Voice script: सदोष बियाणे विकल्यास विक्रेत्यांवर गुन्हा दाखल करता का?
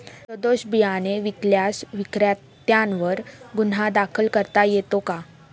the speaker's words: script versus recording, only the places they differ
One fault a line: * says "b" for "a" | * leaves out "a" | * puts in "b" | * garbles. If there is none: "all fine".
* puts in "येतो"